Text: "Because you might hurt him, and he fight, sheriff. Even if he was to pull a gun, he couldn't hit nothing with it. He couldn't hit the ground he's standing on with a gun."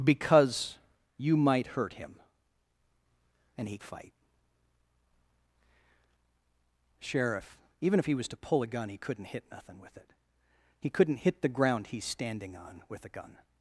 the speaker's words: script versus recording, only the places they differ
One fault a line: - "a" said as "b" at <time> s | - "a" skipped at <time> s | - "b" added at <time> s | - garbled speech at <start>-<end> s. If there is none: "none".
none